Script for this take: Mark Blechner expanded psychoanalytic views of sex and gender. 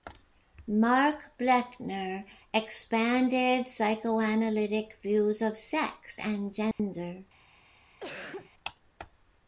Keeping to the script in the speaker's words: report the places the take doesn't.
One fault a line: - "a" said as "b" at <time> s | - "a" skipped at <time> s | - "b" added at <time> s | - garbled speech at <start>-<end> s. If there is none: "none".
none